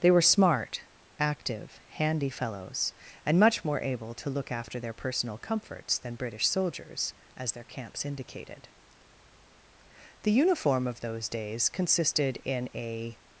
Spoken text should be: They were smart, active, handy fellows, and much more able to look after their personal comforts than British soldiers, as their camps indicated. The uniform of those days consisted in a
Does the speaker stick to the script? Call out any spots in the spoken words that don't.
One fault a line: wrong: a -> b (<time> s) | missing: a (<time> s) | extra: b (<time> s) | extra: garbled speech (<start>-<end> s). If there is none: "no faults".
no faults